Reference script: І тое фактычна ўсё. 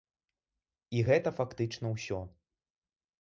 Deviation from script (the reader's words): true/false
true